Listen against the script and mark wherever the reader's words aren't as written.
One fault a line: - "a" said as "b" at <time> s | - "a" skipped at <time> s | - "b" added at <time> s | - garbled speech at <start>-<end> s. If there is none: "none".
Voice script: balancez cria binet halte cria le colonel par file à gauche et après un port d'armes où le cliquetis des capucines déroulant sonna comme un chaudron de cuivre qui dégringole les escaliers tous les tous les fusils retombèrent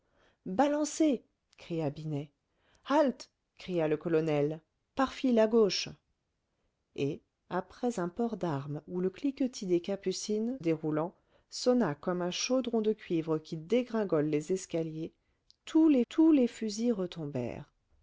none